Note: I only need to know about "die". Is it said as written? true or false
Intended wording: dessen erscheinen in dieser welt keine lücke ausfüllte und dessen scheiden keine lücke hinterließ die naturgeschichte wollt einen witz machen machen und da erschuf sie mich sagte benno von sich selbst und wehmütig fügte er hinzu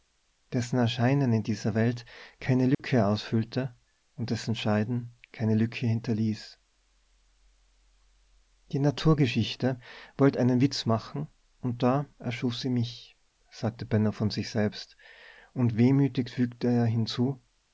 true